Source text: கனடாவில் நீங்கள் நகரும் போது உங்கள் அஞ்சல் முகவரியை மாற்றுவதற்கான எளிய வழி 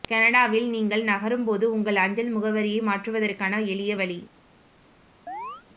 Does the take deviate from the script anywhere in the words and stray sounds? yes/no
yes